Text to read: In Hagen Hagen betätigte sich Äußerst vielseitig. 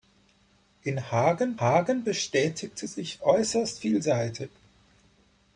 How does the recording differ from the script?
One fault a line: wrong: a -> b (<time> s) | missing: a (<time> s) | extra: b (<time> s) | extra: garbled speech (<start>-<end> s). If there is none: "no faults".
no faults